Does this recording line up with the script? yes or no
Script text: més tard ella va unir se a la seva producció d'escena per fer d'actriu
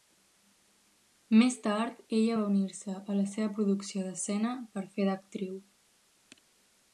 yes